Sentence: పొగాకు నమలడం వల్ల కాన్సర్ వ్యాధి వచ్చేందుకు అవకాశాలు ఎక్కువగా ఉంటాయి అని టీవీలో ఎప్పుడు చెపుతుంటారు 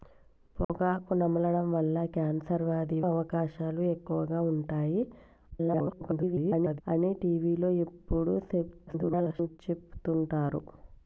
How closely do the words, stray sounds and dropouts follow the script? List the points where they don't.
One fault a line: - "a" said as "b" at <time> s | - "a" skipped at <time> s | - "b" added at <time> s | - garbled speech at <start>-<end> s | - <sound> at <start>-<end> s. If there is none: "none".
- dropout at 0.6-0.7 s
- "వచ్చేందుకు" skipped at 3.0 s
- garbled speech at 5.5-6.8 s
- garbled speech at 8.9-9.6 s